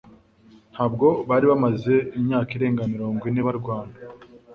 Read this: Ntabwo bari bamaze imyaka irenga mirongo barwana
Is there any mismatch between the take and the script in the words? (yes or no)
yes